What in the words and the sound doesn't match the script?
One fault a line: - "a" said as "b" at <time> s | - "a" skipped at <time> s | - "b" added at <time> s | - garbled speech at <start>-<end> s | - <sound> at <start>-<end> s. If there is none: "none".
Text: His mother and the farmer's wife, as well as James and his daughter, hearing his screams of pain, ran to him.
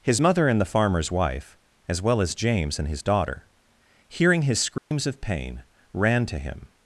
- dropout at 4.8-4.9 s